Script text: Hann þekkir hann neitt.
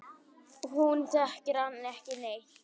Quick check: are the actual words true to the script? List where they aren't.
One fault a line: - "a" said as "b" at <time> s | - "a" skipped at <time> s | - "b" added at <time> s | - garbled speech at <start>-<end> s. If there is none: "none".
- "Hann" said as "Hún" at 0.7 s
- "ekki" added at 1.9 s